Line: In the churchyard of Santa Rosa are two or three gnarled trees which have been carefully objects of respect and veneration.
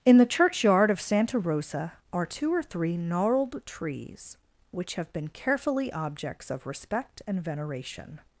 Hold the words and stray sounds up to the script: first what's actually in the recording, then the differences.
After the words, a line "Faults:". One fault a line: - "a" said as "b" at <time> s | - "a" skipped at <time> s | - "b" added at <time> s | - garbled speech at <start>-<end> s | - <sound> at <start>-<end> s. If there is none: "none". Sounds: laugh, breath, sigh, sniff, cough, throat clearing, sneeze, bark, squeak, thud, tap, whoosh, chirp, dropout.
In the churchyard of Santa Rosa are two or three gnarled trees which have been carefully objects of respect and veneration.
Faults:
none